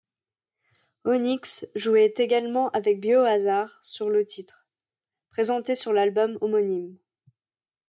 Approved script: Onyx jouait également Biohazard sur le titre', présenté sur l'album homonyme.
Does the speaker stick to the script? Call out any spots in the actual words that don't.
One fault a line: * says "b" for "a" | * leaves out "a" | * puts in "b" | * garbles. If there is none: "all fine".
* puts in "avec"